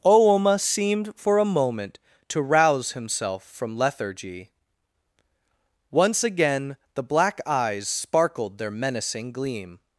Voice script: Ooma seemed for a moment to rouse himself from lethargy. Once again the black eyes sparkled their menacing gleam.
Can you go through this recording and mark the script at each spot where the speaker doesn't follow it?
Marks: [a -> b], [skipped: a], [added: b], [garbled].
Ooma seemed for a moment to rouse himself from lethargy. Once again the black eyes sparkled their menacing gleam.